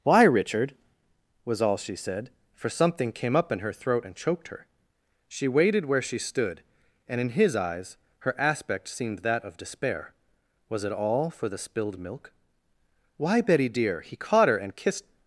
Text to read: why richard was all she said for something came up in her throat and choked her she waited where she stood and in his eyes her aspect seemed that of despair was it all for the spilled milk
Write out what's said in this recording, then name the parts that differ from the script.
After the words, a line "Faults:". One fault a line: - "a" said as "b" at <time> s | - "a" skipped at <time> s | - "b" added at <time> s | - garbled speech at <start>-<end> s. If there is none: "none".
why richard was all she said for something came up in her throat and choked her she waited where she stood and in his eyes her aspect seemed that of despair was it all for the spilled milk why betty dear he caught her and kissed
Faults:
- "why betty dear he caught her and kissed" added at 13.2 s